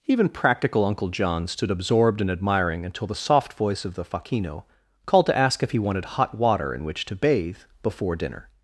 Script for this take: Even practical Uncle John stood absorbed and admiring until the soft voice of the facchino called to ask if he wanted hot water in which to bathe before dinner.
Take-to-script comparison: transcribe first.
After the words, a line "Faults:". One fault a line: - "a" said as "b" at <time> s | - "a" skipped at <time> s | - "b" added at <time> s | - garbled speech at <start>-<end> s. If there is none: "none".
Even practical Uncle John stood absorbed and admiring until the soft voice of the facchino called to ask if he wanted hot water in which to bathe before dinner.
Faults:
none